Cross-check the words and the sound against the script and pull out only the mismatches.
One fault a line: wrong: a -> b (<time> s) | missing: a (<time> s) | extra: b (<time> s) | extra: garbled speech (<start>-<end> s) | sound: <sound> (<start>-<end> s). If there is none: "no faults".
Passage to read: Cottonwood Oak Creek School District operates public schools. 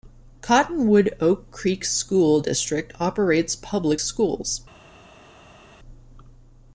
no faults